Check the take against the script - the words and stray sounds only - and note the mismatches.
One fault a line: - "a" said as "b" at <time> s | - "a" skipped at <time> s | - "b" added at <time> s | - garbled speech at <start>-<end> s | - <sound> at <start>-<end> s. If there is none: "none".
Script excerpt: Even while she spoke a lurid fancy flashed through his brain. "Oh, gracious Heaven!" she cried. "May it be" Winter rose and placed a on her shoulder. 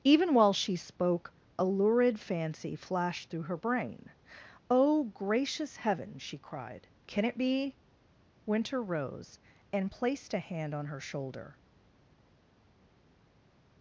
- "his" said as "her" at 3.4 s
- "May" said as "Can" at 7.1 s
- "hand" added at 10.4 s